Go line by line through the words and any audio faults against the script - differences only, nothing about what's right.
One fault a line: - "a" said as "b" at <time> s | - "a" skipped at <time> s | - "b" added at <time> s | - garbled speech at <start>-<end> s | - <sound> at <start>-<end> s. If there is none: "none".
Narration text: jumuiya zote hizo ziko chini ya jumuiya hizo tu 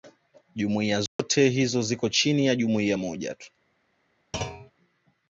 - dropout at 1.1-1.2 s
- "hizo" said as "moja" at 2.9 s
- thud at 4.3-4.7 s